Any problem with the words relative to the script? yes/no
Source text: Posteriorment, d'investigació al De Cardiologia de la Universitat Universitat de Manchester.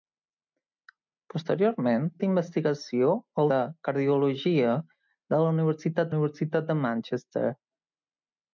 no